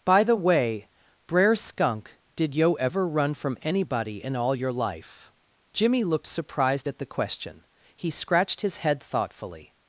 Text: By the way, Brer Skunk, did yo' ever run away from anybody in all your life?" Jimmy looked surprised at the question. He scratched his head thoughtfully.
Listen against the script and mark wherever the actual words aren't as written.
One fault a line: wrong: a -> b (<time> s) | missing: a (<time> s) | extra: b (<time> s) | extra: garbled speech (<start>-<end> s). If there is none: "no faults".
missing: away (3.4 s)